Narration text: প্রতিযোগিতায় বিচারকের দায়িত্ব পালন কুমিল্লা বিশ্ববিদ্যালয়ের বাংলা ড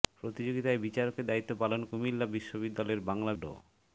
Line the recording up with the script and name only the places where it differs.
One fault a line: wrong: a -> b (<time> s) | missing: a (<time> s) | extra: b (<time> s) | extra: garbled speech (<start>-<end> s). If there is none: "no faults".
no faults